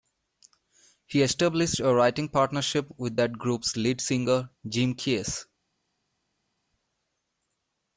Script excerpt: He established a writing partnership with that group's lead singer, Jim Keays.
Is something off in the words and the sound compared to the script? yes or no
no